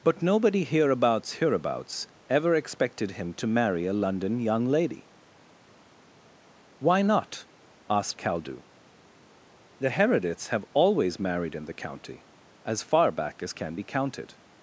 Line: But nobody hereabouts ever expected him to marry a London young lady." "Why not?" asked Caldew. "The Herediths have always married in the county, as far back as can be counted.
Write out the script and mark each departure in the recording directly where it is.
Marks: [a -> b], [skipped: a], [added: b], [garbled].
But nobody hereabouts [added: hereabouts] ever expected him to marry a London young lady." "Why not?" asked Caldew. "The Herediths have always married in the county, as far back as can be counted.